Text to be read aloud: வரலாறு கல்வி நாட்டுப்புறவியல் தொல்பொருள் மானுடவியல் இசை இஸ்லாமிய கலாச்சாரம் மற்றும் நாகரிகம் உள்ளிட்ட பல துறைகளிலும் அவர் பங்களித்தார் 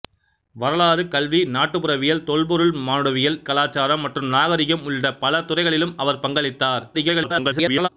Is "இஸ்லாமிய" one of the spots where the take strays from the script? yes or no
yes